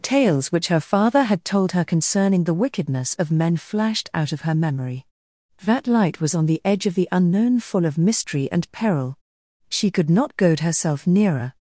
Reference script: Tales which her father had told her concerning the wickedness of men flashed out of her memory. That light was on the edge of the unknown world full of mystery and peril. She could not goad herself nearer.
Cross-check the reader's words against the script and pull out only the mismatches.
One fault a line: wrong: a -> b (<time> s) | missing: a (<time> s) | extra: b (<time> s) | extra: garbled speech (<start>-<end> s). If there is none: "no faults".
missing: world (7.6 s)